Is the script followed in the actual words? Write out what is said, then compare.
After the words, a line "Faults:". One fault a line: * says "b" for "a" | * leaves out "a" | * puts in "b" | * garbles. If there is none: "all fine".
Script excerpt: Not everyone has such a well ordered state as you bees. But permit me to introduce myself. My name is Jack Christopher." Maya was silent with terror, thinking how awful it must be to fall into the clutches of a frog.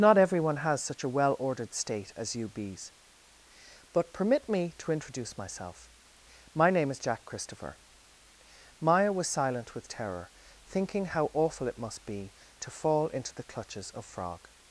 Not everyone has such a well ordered state as you bees. But permit me to introduce myself. My name is Jack Christopher." Maya was silent with terror, thinking how awful it must be to fall into the clutches of frog.
Faults:
* leaves out "a"